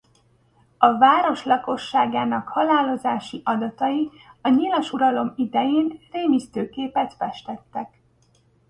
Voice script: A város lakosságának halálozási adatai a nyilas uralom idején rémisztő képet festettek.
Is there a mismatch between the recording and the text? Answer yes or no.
no